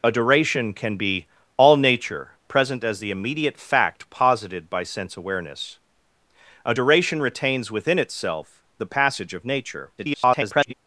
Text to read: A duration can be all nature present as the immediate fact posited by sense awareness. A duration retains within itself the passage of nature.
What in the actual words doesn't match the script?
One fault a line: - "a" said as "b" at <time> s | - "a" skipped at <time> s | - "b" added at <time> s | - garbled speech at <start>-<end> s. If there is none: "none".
- garbled speech at 10.0-10.7 s